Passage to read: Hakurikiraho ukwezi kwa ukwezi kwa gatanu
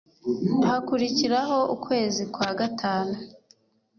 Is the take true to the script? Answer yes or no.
no